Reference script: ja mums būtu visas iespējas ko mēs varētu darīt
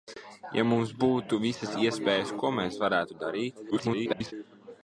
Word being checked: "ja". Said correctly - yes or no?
yes